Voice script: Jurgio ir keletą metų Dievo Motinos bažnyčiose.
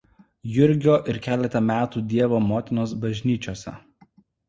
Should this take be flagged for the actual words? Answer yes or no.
no